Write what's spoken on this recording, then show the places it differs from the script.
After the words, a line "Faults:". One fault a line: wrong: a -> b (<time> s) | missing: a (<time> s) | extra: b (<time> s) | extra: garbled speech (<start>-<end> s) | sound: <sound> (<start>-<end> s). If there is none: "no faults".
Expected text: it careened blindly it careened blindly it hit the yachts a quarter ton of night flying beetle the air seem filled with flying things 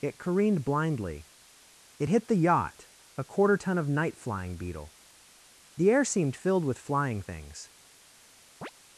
it careened blindly it hit the yacht a quarter ton of night flying beetle the air seemed filled with flying things
Faults:
missing: careened blindly it (2.1 s)
wrong: yachts -> yacht (2.4 s)
wrong: seem -> seemed (6.1 s)
sound: chirp (8.6-8.7 s)